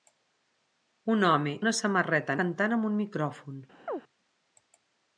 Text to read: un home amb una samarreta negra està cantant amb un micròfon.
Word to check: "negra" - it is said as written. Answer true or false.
false